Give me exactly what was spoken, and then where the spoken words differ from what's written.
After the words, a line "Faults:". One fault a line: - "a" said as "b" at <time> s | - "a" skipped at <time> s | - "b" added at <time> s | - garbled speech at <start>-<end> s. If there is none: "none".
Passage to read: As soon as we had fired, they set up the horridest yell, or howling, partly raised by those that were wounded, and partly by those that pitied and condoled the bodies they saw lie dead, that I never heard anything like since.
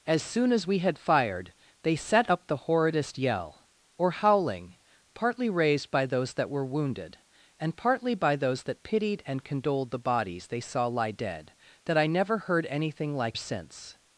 As soon as we had fired, they set up the horridest yell, or howling, partly raised by those that were wounded, and partly by those that pitied and condoled the bodies they saw lie dead, that I never heard anything like since.
Faults:
none